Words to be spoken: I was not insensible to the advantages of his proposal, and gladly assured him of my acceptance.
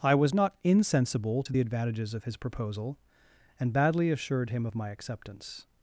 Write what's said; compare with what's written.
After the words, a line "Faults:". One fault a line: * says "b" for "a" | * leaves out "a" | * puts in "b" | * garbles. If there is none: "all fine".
I was not insensible to the advantages of his proposal, and badly assured him of my acceptance.
Faults:
* says "badly" for "gladly"